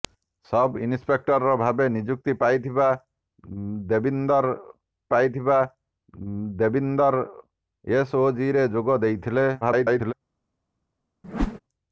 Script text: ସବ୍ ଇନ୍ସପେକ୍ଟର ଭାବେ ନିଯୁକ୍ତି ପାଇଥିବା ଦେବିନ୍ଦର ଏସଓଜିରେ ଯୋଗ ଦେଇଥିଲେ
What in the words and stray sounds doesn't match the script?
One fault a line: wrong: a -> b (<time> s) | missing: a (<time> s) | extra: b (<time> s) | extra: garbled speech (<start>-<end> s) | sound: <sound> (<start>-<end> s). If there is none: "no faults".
extra: ପାଇଥିବା ଦେବିନ୍ଦର (5.1 s)
extra: garbled speech (9.6-10.1 s)
sound: whoosh (11.2-11.6 s)